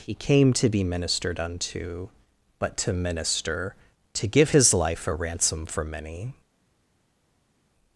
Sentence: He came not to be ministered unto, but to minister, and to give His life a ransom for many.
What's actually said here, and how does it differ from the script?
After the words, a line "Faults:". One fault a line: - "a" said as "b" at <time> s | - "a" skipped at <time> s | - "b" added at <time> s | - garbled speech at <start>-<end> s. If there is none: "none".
He came to be ministered unto, but to minister, to give His life a ransom for many.
Faults:
- "not" skipped at 0.5 s
- "and" skipped at 3.8 s